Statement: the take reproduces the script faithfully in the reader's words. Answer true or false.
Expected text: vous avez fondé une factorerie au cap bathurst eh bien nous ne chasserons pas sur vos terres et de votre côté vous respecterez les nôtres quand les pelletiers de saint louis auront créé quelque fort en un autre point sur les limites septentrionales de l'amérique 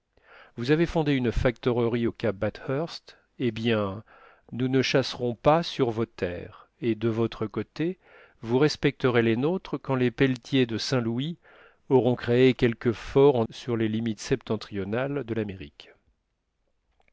false